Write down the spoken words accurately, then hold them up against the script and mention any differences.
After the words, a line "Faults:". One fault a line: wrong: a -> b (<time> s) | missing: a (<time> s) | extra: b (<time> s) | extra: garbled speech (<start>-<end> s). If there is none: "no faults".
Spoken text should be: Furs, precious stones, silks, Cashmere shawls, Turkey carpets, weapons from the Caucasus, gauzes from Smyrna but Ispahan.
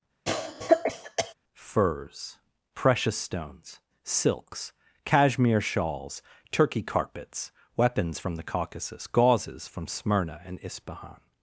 Furs, precious stones, silks, Cashmere shawls, Turkey carpets, weapons from the Caucasus, gauzes from Smyrna and Ispahan.
Faults:
wrong: but -> and (10.4 s)